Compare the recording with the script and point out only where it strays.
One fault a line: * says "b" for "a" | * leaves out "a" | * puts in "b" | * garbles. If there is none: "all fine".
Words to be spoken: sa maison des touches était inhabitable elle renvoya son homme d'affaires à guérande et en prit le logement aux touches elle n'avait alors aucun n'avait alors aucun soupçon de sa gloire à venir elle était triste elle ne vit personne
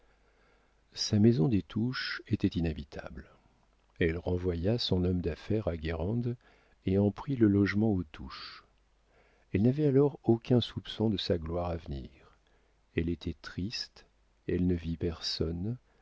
* leaves out "n'avait alors aucun"